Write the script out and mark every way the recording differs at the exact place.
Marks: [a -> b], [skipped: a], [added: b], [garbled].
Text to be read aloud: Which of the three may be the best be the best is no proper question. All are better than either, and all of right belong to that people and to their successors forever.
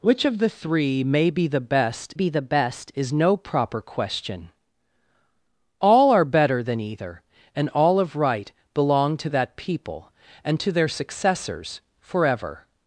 Which of the three may be the best be the best is no proper question. All are better than either, and all of right belong to that people and to their successors forever.